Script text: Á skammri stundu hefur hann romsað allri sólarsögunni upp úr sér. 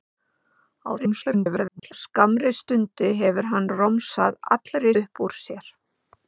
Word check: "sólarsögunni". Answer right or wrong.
wrong